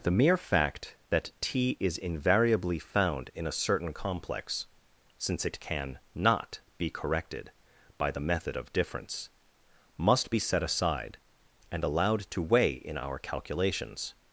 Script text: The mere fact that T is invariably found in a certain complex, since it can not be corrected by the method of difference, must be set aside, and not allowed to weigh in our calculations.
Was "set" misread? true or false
false